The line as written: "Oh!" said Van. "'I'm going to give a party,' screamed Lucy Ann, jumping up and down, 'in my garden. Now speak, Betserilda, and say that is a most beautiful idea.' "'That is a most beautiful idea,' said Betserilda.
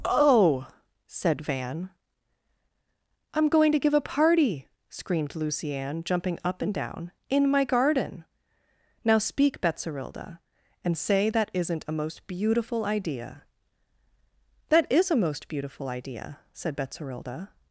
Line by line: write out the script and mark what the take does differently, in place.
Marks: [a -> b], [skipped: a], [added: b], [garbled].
"Oh!" said Van. "'I'm going to give a party,' screamed Lucy Ann, jumping up and down, 'in my garden. Now speak, Betserilda, and say that [is -> isn't] a most beautiful idea.' "'That is a most beautiful idea,' said Betserilda.